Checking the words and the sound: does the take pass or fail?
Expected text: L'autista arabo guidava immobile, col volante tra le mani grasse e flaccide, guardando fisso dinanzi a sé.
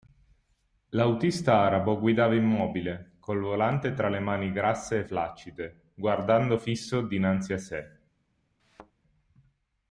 fail